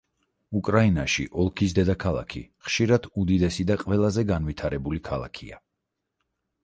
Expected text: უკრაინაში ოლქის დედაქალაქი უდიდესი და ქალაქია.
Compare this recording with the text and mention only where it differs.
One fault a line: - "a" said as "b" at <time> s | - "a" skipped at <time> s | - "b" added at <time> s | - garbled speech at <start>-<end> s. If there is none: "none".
- "ხშირად" added at 2.7 s
- "ყველაზე განვითარებული" added at 3.9 s